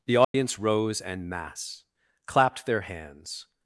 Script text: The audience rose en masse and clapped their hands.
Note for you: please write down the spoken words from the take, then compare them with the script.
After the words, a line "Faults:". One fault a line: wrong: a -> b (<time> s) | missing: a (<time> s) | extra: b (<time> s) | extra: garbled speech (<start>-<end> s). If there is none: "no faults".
The audience rose en masse clapped their hands.
Faults:
missing: and (1.9 s)